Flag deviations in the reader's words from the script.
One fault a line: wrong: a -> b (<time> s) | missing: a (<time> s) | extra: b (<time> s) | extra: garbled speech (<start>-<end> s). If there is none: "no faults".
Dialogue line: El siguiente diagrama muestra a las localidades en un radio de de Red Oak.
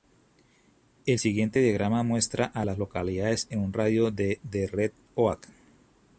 no faults